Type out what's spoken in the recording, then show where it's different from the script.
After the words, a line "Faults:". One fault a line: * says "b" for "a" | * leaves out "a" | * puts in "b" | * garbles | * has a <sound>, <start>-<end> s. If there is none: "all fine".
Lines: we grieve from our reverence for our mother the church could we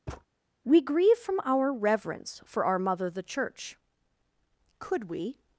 we grieve from our reverence for our mother the church could we
Faults:
* has a thud, 0.1-0.2 s